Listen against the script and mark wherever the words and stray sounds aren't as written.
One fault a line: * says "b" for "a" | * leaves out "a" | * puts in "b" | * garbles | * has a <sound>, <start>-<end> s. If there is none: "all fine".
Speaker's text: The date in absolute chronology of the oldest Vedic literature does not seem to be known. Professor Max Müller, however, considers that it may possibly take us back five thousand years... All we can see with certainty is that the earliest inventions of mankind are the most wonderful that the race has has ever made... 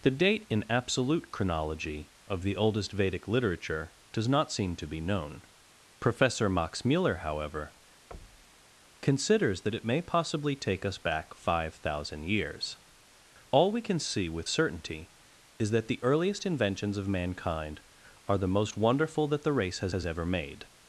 * has a thud, 8.1-8.7 s